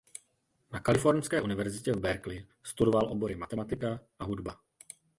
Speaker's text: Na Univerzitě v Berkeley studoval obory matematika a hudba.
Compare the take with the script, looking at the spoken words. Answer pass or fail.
fail